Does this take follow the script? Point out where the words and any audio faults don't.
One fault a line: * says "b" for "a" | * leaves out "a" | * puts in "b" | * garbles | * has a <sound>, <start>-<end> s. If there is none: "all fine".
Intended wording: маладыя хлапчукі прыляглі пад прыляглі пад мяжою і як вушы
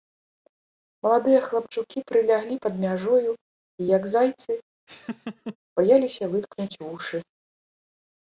* leaves out "прыляглі пад"
* puts in "зайцы баяліся выткнуць"
* has a laugh, 4.9-5.6 s